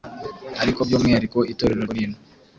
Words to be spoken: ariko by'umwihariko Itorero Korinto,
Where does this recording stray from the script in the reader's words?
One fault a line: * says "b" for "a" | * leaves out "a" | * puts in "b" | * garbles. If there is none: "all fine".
all fine